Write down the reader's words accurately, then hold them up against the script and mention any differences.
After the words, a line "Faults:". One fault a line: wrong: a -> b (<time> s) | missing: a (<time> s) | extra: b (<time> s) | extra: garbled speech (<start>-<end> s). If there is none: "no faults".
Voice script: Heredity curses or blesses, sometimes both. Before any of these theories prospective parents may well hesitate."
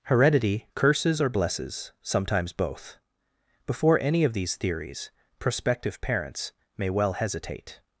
Heredity curses or blesses, sometimes both. Before any of these theories prospective parents may well hesitate."
Faults:
no faults